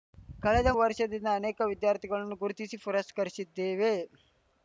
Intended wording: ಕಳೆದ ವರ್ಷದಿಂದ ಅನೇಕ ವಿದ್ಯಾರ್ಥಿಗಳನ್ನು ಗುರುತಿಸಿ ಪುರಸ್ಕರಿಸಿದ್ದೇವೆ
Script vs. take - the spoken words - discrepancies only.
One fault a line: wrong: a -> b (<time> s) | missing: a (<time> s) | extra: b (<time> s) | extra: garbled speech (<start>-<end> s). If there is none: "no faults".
no faults